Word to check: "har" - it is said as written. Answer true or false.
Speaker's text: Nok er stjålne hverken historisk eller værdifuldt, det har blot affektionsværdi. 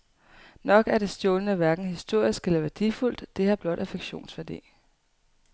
true